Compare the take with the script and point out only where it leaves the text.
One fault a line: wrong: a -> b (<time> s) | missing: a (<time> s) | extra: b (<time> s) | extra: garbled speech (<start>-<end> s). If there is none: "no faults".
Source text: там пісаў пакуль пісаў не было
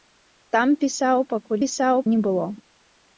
no faults